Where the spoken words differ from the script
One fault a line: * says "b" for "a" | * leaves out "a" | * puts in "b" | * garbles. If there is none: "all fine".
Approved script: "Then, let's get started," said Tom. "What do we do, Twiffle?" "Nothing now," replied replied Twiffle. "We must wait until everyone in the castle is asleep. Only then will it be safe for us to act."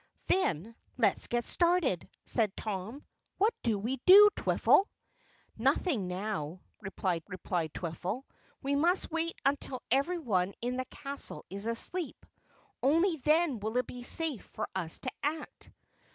all fine